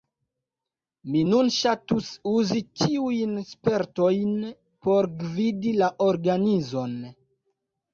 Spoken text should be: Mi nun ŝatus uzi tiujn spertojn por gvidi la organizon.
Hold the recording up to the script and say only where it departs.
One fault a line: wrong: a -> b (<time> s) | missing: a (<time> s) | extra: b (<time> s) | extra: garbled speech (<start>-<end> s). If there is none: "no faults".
no faults